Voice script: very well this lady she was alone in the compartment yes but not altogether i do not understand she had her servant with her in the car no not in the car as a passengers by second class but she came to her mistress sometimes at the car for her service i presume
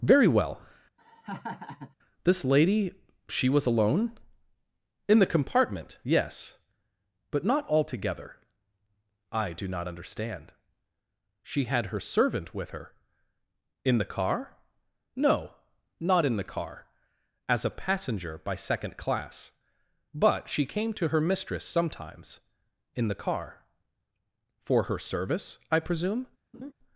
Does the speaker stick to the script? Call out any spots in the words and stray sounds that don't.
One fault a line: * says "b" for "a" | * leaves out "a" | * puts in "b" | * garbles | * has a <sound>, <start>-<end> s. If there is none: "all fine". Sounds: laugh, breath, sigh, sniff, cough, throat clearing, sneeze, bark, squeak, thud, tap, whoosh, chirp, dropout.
* has a laugh, 1.0-2.0 s
* says "passenger" for "passengers"
* says "in" for "at"
* has a laugh, 26.5-26.7 s